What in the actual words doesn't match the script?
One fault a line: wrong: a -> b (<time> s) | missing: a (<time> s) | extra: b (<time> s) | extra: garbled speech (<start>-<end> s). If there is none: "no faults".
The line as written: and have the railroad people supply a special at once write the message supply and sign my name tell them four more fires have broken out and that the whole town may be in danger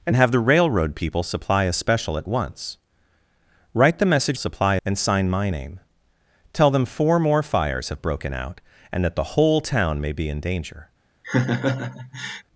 no faults